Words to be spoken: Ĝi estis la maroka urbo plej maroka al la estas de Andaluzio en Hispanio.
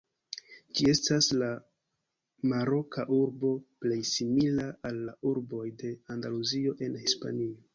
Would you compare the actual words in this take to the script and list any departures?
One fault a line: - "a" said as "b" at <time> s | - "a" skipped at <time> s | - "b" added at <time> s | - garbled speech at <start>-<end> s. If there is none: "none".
- "estis" said as "estas" at 0.9 s
- "maroka" said as "simila" at 4.1 s
- "estas" said as "urboj" at 5.3 s